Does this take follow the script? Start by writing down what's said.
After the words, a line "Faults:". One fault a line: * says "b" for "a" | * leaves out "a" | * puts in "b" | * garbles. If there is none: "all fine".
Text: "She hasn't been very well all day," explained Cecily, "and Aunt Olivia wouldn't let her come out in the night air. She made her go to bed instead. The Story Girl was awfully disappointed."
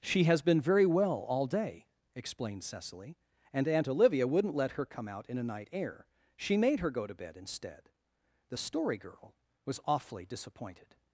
"She has been very well all day," explained Cecily, "and Aunt Olivia wouldn't let her come out in a night air. She made her go to bed instead. The Story Girl was awfully disappointed."
Faults:
* says "has" for "hasn't"
* says "a" for "the"